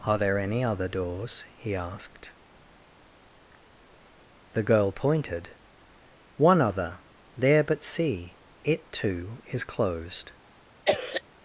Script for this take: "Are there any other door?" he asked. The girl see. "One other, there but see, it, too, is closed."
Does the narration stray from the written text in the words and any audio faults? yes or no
yes